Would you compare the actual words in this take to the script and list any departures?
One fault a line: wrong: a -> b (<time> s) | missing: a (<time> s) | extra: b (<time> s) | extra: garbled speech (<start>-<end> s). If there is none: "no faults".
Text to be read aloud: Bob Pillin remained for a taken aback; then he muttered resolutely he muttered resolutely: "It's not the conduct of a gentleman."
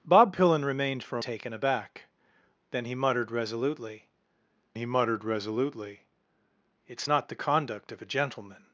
no faults